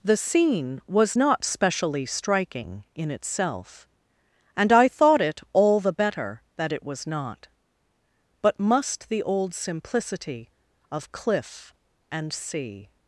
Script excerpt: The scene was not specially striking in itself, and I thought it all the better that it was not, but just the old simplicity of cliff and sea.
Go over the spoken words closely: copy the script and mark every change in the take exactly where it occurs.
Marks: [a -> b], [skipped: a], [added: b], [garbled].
The scene was not specially striking in itself, and I thought it all the better that it was not, but [just -> must] the old simplicity of cliff and sea.